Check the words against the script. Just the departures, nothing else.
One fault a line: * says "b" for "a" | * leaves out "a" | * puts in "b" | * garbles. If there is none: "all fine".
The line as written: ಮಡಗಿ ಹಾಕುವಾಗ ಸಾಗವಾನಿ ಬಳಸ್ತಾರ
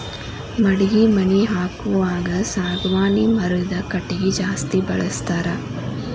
* puts in "ಮನಿ"
* puts in "ಮರದ ಕಟಗಿ ಜಾಸ್ತಿ"